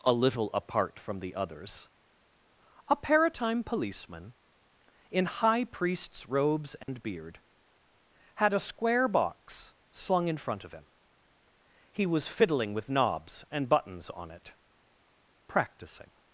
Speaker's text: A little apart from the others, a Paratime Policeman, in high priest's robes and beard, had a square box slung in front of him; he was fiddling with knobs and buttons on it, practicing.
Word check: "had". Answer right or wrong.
right